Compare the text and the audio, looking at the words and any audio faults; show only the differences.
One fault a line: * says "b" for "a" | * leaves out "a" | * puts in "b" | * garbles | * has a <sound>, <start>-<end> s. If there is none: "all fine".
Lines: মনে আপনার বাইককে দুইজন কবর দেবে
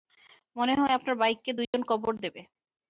* puts in "হয়"
* has a dropout, 1.6-1.7 s